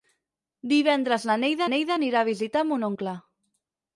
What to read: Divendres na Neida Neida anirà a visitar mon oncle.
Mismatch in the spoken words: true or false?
false